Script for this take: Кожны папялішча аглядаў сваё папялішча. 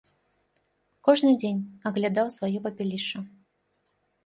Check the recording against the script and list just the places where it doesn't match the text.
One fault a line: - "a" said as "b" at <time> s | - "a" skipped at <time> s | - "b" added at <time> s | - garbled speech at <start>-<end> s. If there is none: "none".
- "папялішча" said as "дзень" at 1.4 s